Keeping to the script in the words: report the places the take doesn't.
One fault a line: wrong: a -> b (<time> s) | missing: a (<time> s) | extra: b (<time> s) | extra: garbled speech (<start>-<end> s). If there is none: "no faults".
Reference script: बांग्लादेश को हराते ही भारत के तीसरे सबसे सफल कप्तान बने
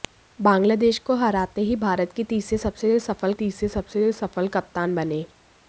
extra: तीसरे सबसे सफल (3.3 s)